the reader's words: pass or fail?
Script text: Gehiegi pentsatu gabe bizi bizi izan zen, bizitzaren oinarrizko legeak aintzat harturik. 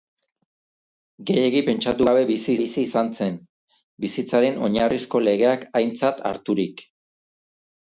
pass